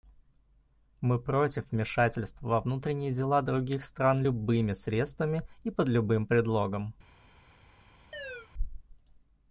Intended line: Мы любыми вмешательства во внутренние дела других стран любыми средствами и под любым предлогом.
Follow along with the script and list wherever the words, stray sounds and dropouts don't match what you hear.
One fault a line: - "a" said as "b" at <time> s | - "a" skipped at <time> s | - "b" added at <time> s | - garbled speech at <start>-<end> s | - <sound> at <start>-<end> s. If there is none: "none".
- "любыми" said as "против" at 1.2 s
- chirp at 8.1-8.5 s